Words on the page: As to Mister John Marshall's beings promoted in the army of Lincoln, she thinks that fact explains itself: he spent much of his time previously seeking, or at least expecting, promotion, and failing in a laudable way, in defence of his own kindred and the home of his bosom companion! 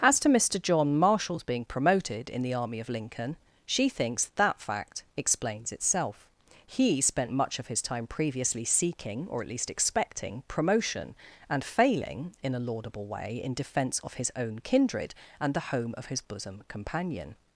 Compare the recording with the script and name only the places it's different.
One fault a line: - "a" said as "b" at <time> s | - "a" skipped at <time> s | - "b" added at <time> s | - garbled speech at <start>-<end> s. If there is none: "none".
- "beings" said as "being" at 1.4 s